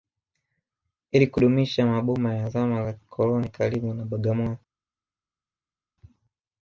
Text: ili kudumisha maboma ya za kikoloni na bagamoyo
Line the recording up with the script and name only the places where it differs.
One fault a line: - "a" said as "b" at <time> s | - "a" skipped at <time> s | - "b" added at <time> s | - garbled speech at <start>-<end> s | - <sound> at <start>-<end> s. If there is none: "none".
- "zama" added at 2.5 s
- "karibu" added at 3.5 s